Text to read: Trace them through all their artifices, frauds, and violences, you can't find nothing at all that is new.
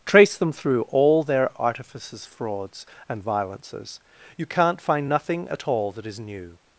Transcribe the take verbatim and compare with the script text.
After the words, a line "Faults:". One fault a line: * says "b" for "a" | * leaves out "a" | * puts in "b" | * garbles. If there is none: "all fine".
Trace them through all their artifices, frauds, and violences, you can't find nothing at all that is new.
Faults:
all fine